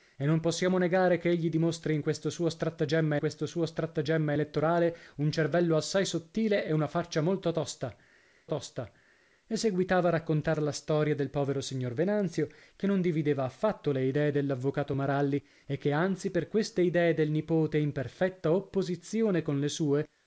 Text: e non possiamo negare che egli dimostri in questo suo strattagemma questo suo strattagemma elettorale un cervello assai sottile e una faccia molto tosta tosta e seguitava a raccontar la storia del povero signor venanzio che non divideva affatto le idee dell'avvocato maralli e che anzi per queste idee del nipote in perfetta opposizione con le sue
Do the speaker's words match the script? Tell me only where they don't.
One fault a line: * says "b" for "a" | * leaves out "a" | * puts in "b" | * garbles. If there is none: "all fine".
all fine